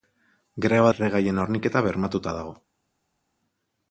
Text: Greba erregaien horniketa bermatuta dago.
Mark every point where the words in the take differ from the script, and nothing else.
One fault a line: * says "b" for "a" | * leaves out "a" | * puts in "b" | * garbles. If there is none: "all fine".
all fine